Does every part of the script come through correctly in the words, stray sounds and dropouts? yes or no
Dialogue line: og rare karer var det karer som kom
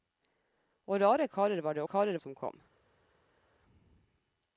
yes